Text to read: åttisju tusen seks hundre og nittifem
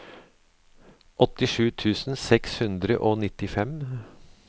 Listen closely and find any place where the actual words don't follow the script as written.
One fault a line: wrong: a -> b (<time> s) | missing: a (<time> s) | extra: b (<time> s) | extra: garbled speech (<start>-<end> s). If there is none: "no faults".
no faults